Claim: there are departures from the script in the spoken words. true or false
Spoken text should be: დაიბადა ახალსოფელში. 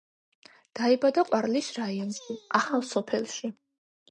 true